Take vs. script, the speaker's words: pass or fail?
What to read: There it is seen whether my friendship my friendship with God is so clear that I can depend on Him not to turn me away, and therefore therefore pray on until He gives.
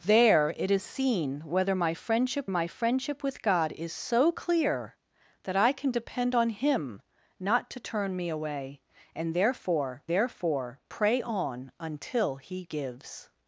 pass